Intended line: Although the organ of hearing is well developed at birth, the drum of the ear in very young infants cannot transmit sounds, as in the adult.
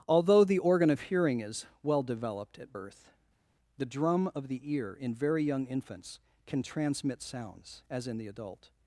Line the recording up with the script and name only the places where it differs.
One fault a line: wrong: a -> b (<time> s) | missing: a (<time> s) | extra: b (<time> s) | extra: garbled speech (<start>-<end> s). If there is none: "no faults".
wrong: cannot -> can (6.5 s)